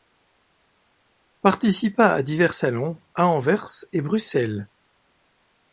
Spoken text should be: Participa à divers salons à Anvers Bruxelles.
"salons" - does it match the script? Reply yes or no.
yes